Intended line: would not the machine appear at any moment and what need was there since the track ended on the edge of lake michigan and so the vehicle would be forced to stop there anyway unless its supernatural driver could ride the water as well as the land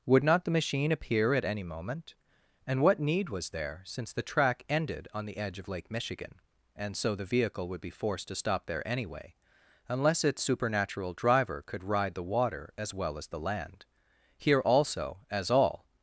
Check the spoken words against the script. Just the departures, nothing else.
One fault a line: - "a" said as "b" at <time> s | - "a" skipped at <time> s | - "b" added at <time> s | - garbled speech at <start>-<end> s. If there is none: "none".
- "here also as all" added at 14.4 s